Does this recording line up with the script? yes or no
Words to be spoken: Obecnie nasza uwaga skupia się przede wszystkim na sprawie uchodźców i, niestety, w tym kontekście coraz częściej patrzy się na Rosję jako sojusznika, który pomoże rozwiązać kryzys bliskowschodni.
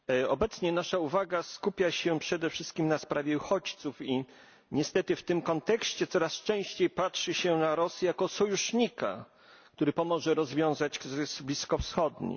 yes